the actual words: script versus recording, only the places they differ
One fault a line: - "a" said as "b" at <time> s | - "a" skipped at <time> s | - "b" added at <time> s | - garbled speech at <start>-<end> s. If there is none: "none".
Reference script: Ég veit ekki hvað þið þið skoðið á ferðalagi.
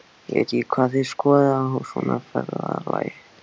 - "þið" skipped at 1.1 s
- "svona" added at 1.9 s